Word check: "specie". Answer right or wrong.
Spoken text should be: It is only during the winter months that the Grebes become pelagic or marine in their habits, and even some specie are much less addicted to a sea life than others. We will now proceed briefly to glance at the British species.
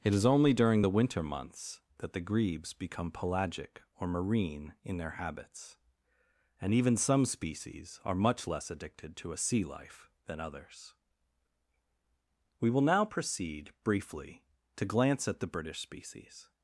wrong